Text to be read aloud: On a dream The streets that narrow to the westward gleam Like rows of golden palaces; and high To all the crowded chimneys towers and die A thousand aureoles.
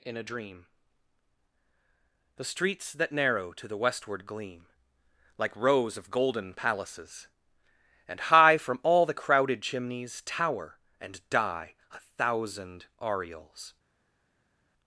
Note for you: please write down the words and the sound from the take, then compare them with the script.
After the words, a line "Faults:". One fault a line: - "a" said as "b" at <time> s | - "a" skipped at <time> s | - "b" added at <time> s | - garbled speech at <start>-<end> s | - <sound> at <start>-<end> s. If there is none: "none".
In a dream The streets that narrow to the westward gleam Like rows of golden palaces; and high From all the crowded chimneys tower and die A thousand aureoles.
Faults:
- "On" said as "In" at 0.0 s
- "To" said as "From" at 8.6 s
- "towers" said as "tower" at 10.2 s